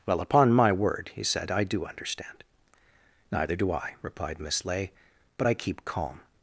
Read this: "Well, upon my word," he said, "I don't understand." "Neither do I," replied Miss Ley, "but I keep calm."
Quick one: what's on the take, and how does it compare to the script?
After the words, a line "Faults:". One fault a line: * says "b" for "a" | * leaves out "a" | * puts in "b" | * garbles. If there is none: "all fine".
"Well, upon my word," he said, "I do understand." "Neither do I," replied Miss Ley, "but I keep calm."
Faults:
* says "do" for "don't"